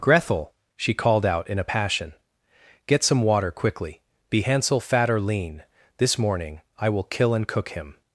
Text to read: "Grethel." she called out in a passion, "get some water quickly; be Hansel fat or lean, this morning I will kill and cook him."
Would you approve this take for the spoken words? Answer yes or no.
yes